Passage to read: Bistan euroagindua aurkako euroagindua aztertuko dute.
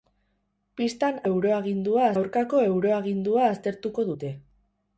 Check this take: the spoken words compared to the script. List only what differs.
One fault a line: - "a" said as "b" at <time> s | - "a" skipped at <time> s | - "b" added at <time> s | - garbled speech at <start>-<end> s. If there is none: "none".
none